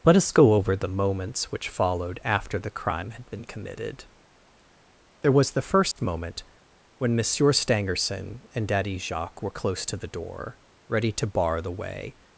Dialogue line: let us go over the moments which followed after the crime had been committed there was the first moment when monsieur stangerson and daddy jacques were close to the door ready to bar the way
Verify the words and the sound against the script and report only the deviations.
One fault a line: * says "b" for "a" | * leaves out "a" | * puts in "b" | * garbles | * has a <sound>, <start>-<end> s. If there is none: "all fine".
* has a dropout, 5.9-6.0 s